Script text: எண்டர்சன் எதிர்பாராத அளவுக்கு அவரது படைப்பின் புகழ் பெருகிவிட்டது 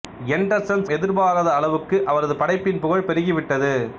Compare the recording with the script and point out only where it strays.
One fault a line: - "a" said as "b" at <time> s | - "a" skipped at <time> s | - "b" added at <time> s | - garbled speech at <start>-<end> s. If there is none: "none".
none